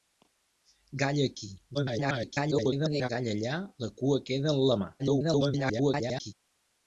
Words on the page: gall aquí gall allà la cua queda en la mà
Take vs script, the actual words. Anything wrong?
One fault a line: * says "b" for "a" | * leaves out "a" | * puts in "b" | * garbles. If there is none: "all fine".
* garbles
* garbles